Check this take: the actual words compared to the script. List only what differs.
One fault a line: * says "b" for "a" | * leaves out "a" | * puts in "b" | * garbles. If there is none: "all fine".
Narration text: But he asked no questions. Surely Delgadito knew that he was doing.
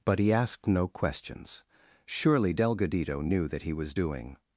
all fine